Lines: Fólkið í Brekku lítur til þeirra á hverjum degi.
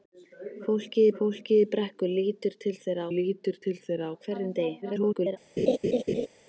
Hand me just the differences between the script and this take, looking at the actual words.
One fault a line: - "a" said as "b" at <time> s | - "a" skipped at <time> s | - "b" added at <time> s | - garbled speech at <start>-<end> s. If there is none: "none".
- "fólkið" added at 1.2 s
- "lítur til þeirra" added at 3.1 s
- garbled speech at 4.8-5.4 s